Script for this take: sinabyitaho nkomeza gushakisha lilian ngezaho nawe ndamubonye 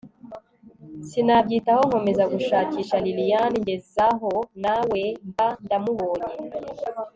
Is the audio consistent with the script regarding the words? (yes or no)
no